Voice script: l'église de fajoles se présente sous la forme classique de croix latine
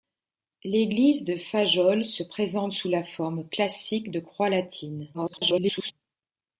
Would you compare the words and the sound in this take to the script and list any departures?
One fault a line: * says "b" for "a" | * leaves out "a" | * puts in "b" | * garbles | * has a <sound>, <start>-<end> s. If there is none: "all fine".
* garbles